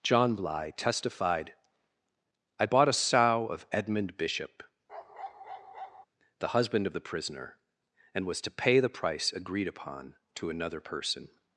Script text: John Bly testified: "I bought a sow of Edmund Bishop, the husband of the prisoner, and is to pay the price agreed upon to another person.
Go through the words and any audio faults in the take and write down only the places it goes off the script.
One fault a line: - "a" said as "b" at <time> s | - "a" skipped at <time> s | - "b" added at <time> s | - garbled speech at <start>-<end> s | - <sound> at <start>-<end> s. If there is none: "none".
- bark at 4.9-6.1 s
- "is" said as "was" at 8.2 s